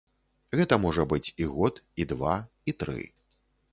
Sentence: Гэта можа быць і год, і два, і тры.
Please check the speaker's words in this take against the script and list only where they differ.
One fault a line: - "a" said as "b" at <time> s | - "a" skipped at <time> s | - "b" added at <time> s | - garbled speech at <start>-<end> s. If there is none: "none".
none